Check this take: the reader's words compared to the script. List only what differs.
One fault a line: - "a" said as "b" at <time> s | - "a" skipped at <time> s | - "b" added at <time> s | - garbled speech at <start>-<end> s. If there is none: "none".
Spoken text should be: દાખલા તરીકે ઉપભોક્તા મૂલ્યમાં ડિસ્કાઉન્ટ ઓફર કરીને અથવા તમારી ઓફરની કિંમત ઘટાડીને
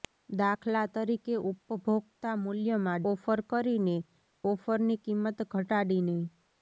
- "ડિસ્કાઉન્ટ" skipped at 3.0 s
- "અથવા તમારી" skipped at 4.0 s